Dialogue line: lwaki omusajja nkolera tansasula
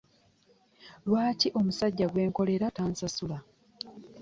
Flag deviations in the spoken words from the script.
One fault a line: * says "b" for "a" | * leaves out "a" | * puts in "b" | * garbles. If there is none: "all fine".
* puts in "gwe"